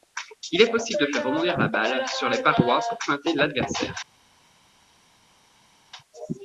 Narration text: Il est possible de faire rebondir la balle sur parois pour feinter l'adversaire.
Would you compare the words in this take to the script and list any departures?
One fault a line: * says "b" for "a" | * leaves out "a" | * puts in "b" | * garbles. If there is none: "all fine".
* puts in "les"